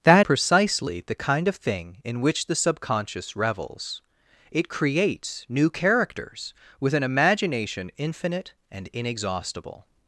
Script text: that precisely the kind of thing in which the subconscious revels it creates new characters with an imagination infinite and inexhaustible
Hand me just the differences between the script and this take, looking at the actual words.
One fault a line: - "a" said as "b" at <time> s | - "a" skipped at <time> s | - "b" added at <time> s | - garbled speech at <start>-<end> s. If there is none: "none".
none